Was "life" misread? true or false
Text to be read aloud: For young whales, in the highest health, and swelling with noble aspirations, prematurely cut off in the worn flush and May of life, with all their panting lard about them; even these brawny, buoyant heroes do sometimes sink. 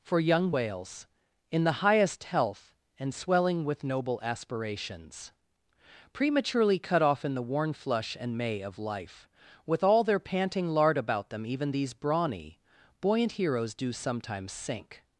false